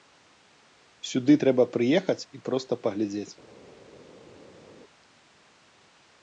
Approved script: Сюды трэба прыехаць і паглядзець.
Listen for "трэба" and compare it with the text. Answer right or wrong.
right